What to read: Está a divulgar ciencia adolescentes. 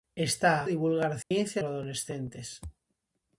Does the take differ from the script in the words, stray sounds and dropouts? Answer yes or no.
yes